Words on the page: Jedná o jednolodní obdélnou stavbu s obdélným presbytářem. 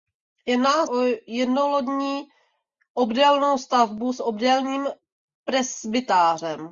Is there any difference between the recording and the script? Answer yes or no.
no